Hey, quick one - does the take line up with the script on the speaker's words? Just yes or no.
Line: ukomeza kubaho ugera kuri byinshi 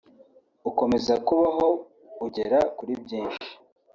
yes